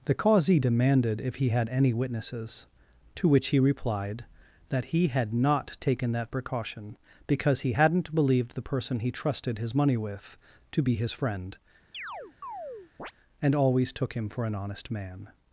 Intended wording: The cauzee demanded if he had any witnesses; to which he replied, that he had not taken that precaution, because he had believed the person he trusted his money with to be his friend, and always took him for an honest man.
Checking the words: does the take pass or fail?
fail